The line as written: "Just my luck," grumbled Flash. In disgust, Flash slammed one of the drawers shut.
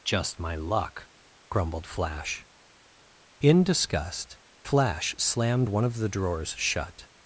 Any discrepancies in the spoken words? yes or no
no